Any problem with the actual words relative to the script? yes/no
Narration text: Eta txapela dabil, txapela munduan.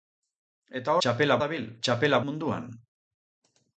no